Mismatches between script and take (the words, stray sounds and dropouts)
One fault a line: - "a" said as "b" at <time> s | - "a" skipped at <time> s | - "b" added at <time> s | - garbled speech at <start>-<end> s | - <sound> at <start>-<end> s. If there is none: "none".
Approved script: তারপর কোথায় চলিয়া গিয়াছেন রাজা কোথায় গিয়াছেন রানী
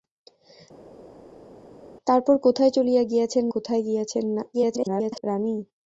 - "রাজা" skipped at 3.4 s
- garbled speech at 4.5-5.2 s